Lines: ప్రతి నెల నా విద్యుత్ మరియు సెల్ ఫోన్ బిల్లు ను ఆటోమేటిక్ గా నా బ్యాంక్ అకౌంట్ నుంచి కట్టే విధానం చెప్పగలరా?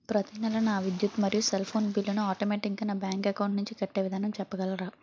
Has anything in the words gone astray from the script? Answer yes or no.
no